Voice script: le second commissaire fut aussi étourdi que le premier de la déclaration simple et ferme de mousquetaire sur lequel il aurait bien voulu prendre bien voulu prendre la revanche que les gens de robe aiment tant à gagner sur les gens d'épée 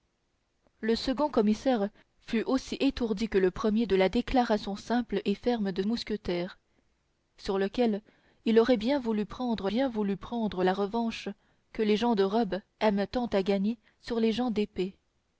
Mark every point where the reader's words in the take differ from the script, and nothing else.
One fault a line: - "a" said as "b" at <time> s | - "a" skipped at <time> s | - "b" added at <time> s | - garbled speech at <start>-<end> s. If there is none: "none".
none